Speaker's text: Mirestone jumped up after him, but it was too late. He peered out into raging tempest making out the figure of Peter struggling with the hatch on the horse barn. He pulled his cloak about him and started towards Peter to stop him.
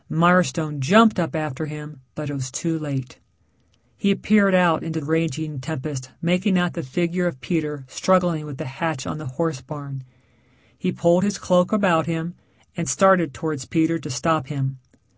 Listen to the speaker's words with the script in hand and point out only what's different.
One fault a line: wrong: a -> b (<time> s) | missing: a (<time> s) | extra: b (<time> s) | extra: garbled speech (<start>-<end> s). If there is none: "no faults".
no faults